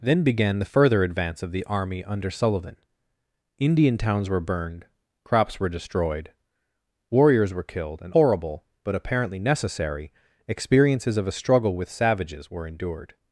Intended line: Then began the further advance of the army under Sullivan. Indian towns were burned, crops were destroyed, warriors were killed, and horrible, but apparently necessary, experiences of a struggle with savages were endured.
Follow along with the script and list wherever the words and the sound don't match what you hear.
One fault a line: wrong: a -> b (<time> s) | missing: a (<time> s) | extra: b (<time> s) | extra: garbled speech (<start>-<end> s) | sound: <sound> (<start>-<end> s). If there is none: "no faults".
no faults